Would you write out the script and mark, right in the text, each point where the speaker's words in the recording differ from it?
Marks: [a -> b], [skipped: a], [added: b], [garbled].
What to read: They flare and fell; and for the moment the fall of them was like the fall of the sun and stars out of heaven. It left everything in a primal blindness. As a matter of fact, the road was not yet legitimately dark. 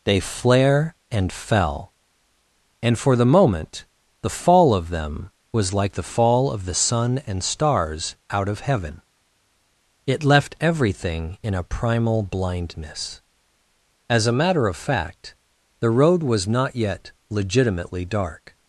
They flare and fell; and for the moment the fall of them was like the fall of the sun and stars out of heaven. It left everything in a primal blindness. As a matter of fact, the road was not yet legitimately dark.